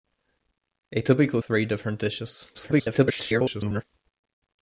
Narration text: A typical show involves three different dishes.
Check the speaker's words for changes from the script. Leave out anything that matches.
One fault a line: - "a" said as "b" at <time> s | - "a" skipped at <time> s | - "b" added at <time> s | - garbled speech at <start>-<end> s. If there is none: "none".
- "show involves" skipped at 1.4 s
- garbled speech at 2.5-3.8 s